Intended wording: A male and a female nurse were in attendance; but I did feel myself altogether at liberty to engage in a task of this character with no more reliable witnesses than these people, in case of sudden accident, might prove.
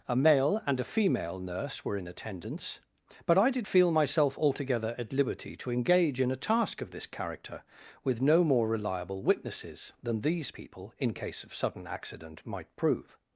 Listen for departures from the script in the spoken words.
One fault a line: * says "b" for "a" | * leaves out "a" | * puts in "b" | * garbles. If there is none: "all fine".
all fine